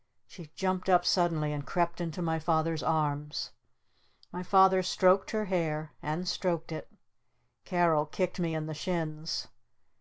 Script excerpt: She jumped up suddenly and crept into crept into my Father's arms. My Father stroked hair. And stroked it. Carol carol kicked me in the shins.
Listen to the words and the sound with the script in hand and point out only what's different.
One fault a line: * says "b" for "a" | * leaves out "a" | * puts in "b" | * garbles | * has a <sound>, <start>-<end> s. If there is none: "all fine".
* leaves out "crept into"
* puts in "her"
* leaves out "carol"